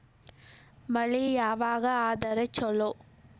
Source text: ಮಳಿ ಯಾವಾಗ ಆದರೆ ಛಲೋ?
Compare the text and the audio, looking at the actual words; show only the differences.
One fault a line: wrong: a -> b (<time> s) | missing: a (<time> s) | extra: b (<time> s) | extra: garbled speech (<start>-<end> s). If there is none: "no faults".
no faults